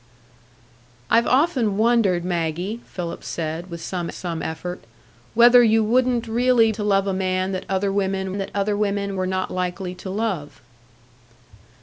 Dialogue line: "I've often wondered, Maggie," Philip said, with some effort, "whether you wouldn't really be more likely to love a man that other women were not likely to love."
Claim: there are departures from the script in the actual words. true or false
true